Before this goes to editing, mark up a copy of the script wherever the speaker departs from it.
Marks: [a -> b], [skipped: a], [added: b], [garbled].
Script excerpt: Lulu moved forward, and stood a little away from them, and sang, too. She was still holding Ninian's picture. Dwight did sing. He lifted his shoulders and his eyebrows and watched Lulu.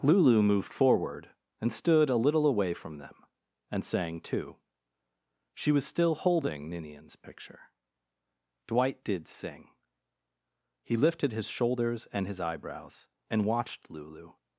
Lulu moved forward, and stood a little away from them, and sang, too. She was still holding Ninian's picture. Dwight did sing. He lifted his shoulders and his eyebrows and watched Lulu.